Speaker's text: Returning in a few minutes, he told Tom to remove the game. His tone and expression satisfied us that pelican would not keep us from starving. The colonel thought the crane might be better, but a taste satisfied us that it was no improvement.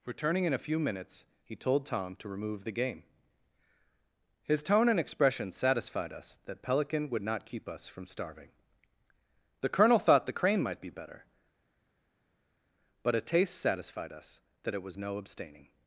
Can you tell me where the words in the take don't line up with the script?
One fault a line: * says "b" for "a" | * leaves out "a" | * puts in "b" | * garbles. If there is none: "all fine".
* says "abstaining" for "improvement"